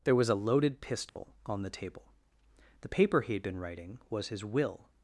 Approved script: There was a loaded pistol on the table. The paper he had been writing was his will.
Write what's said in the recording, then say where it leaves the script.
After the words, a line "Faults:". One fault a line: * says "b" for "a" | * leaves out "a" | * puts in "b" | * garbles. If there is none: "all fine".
There was a loaded pistol on the table. The paper he had been writing was his will.
Faults:
all fine